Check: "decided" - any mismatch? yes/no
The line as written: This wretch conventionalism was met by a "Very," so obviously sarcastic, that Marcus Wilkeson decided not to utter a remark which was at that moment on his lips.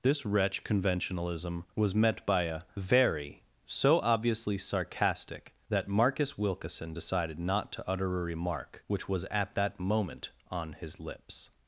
no